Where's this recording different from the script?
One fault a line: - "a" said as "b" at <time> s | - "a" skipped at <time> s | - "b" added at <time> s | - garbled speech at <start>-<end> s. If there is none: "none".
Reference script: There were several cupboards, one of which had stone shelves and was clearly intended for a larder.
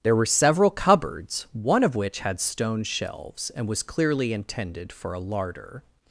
none